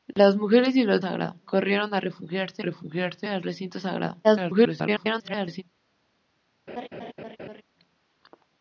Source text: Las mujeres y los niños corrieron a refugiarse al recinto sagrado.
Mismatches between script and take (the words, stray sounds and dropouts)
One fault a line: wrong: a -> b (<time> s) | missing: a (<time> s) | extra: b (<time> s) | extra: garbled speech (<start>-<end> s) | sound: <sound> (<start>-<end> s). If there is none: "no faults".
wrong: niños -> sagrado (1.0 s)
extra: refugiarse (2.6 s)
extra: garbled speech (4.2-5.6 s)
sound: laugh (6.7-7.6 s)